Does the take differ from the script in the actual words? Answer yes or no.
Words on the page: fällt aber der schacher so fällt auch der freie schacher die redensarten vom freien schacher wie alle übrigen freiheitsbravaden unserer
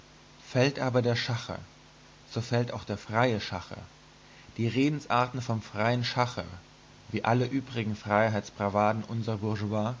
no